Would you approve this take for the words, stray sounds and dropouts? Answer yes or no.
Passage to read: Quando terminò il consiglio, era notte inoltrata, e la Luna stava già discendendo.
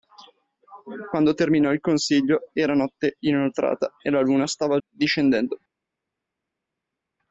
no